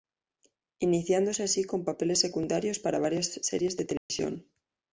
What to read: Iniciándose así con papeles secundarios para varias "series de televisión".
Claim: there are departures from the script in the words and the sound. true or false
true